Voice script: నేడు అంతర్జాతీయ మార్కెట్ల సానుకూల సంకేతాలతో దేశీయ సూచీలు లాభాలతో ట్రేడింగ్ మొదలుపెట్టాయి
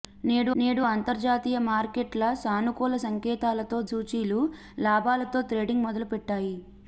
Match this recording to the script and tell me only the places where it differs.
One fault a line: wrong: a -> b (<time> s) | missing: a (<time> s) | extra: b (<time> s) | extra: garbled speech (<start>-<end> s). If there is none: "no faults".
extra: నేడు (0.6 s)
missing: దేశీయ (3.8 s)